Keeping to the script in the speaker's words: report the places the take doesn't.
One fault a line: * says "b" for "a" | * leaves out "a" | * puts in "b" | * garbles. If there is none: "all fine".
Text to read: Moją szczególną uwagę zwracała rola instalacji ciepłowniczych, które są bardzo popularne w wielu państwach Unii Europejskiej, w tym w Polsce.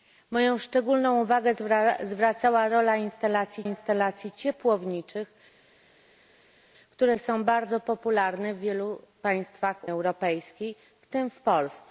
* puts in "instalacji"
* leaves out "Unii"